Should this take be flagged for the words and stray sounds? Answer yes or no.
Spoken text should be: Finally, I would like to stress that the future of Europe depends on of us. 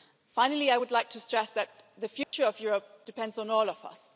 yes